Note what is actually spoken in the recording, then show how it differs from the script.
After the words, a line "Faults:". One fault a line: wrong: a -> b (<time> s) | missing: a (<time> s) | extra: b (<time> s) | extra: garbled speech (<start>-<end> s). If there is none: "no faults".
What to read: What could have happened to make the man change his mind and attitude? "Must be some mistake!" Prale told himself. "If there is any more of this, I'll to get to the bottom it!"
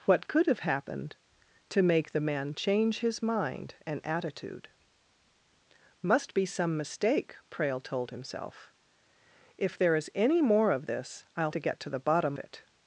What could have happened to make the man change his mind and attitude? "Must be some mistake!" Prale told himself. "If there is any more of this, I'll to get to the bottom it!"
Faults:
no faults